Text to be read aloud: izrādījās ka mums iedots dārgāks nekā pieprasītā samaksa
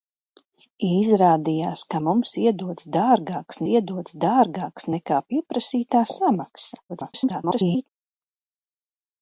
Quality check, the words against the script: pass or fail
fail